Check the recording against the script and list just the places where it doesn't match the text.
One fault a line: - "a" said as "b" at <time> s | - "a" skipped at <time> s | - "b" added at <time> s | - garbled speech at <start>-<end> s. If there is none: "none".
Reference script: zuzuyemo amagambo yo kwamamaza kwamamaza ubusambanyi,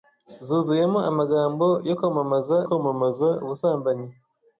none